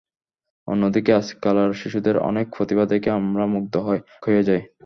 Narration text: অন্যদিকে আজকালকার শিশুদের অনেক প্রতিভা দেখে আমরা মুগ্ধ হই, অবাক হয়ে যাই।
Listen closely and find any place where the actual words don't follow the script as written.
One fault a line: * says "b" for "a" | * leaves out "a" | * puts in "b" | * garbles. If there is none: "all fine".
* leaves out "অবাক"